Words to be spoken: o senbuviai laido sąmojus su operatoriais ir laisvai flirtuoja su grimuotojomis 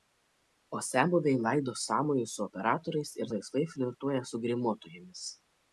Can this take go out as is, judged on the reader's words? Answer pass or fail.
pass